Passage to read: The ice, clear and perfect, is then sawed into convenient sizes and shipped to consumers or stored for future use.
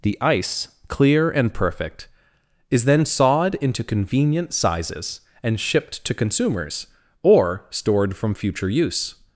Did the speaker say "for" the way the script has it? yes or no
no